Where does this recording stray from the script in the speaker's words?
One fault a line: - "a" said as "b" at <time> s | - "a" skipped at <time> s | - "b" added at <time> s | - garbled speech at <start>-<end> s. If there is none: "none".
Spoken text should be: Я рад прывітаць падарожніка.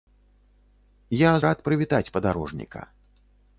none